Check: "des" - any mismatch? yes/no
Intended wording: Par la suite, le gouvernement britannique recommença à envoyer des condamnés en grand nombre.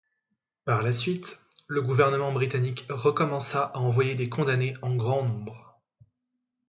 no